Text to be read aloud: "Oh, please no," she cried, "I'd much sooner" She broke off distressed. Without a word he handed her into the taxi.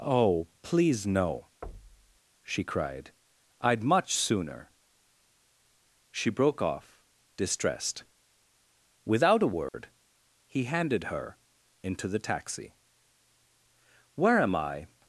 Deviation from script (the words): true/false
true